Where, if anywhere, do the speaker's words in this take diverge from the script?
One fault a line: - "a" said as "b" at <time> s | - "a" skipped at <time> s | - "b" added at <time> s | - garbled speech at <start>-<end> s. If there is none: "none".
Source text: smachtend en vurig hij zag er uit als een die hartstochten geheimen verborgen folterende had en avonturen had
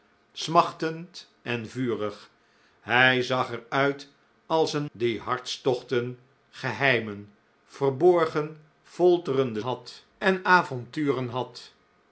none